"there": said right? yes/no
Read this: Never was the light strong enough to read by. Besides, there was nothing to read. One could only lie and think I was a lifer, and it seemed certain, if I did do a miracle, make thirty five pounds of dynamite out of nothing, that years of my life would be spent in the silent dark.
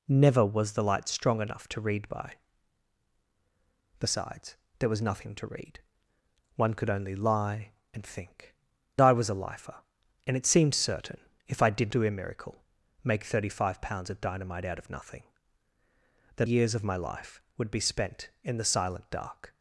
yes